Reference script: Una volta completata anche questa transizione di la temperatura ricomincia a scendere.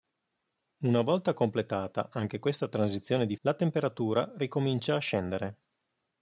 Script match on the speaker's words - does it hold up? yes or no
yes